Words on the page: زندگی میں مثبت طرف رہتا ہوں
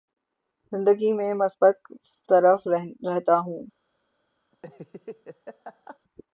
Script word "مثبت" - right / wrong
right